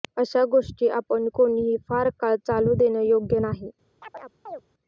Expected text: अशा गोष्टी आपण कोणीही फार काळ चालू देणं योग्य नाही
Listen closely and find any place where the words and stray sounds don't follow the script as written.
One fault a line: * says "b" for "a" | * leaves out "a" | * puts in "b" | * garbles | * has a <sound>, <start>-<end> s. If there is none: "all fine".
* has a chirp, 4.0-4.6 s